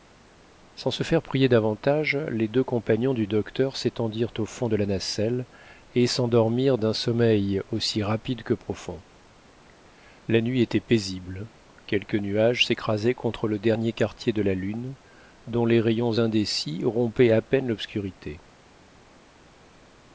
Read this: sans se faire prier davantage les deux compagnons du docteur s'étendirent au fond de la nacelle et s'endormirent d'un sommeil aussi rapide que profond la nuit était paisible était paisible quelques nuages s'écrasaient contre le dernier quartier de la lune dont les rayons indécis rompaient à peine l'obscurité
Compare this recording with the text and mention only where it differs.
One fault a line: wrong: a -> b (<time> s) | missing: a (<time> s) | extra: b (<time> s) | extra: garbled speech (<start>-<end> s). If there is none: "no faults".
missing: était paisible (11.5 s)